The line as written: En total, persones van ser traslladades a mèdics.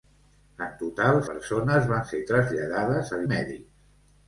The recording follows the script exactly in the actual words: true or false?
true